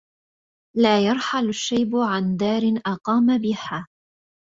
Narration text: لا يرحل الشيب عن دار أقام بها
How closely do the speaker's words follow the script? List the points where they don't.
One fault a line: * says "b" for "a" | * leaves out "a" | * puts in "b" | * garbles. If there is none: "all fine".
all fine